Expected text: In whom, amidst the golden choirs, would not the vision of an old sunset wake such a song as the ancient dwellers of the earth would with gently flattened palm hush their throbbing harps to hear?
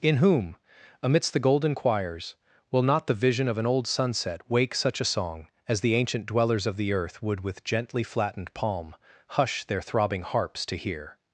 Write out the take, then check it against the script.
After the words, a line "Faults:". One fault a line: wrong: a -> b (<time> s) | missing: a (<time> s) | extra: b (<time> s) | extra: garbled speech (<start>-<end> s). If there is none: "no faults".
In whom, amidst the golden choirs, will not the vision of an old sunset wake such a song as the ancient dwellers of the earth would with gently flattened palm hush their throbbing harps to hear?
Faults:
wrong: would -> will (2.7 s)